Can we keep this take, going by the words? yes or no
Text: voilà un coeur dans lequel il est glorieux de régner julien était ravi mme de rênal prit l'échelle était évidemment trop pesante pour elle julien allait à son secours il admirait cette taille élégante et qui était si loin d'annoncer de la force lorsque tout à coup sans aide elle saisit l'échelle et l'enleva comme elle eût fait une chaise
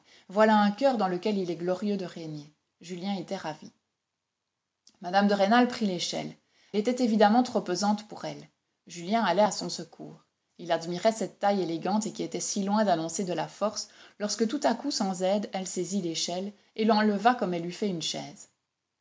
yes